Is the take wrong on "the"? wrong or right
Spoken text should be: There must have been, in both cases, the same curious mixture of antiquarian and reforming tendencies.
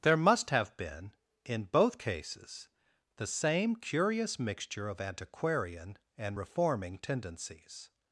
right